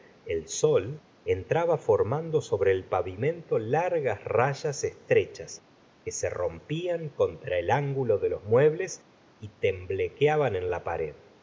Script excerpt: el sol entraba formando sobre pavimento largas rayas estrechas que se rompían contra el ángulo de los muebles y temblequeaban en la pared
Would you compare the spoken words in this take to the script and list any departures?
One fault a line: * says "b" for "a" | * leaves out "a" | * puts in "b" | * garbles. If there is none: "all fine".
* puts in "el"